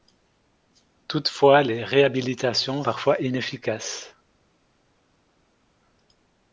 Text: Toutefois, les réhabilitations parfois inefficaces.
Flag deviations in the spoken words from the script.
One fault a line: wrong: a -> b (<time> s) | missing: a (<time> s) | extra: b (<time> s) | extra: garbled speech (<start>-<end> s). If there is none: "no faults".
no faults